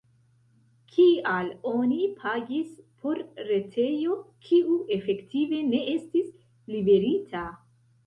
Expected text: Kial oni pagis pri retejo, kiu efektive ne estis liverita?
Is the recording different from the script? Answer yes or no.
yes